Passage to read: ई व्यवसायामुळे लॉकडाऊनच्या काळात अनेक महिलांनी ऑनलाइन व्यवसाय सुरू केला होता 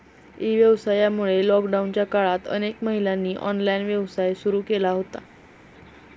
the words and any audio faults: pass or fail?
pass